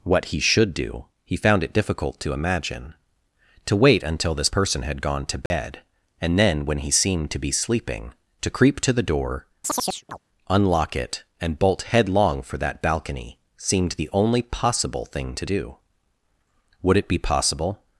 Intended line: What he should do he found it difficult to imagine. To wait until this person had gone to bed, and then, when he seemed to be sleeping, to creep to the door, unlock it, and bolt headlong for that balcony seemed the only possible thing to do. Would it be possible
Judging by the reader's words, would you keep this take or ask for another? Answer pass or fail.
pass